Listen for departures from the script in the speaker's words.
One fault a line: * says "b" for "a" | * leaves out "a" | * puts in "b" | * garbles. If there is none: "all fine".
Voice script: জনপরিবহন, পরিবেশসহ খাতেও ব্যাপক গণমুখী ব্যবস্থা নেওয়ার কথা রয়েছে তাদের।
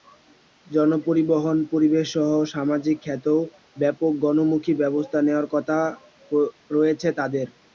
* puts in "সামাজিক"